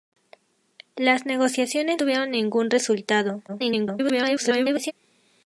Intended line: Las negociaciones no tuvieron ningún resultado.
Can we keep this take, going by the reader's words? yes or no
no